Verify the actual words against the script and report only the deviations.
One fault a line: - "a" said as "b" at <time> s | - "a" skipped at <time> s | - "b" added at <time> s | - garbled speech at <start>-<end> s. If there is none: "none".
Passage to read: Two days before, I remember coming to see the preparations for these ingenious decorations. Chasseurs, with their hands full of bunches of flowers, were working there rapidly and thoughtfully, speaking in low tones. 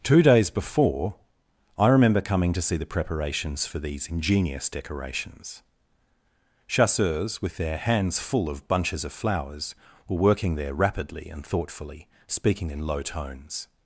none